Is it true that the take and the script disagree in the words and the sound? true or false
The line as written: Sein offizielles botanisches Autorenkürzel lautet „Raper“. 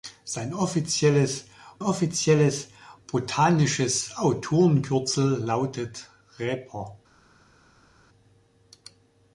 true